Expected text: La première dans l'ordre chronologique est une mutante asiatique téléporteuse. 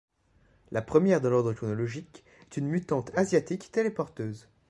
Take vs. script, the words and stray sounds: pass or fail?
pass